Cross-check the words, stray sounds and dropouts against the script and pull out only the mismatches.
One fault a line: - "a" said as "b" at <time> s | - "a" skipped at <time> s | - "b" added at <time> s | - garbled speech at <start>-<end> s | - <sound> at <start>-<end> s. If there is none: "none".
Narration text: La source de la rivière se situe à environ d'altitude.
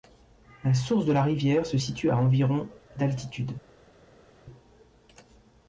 none